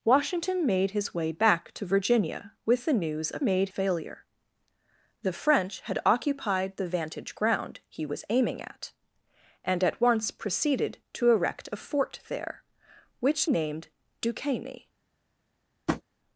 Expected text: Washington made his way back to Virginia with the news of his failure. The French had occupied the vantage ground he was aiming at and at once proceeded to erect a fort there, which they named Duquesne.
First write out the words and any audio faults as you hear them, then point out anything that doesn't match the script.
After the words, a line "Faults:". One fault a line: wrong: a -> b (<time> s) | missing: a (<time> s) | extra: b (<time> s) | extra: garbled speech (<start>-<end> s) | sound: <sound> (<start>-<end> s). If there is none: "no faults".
Washington made his way back to Virginia with the news of made failure. The French had occupied the vantage ground he was aiming at and at once proceeded to erect a fort there, which named Duquesne.
Faults:
wrong: his -> made (3.4 s)
missing: they (13.5 s)
sound: tap (15.9-16.0 s)